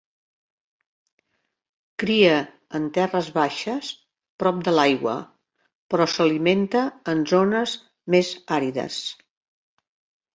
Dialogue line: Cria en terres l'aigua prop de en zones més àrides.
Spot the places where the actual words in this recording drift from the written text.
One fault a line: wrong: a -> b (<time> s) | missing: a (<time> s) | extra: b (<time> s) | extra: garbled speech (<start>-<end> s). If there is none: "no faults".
wrong: l'aigua -> baixes (3.4 s)
extra: l'aigua però s'alimenta (4.8 s)